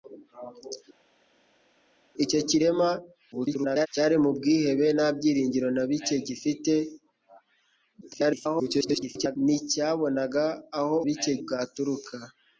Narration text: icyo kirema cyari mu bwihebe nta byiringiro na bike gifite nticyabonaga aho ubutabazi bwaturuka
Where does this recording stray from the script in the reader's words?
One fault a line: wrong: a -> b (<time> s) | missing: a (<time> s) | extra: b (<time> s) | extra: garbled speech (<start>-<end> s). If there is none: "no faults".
extra: garbled speech (3.3-3.9 s)
extra: garbled speech (8.0-9.4 s)
wrong: ubutabazi -> bike (11.1 s)